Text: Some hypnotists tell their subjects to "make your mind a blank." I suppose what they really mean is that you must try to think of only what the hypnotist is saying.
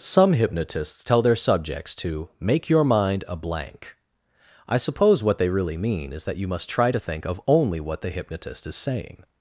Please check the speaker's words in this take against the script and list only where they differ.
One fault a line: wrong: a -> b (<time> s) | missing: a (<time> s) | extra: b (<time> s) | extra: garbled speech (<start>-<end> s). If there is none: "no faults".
no faults